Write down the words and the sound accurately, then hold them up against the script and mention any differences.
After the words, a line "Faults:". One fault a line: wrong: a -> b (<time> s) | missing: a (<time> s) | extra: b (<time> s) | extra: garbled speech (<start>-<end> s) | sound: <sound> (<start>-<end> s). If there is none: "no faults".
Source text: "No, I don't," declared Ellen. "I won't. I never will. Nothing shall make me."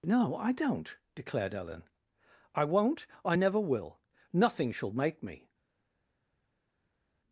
"No, I don't," declared Ellen. "I won't. I never will. Nothing shall make me."
Faults:
no faults